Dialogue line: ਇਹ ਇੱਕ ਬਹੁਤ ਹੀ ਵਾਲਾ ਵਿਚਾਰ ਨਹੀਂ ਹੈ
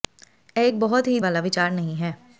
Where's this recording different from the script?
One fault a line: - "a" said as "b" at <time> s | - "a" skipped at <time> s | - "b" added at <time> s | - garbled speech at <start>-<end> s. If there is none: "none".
none